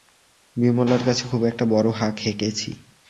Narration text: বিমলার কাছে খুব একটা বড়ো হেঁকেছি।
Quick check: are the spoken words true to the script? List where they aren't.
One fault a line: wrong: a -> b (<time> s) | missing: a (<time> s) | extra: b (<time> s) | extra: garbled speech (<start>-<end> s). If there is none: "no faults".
extra: হাঁক (1.9 s)